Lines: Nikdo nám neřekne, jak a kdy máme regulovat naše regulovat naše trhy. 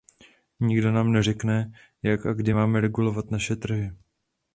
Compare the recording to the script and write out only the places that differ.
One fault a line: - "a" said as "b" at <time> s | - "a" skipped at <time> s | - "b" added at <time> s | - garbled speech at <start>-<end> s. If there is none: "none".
- "regulovat naše" skipped at 3.6 s